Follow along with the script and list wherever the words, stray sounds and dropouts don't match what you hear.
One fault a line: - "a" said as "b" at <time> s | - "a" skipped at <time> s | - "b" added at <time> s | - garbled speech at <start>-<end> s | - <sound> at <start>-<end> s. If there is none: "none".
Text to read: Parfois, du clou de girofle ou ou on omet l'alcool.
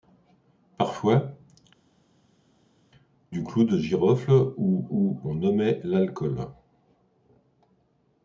none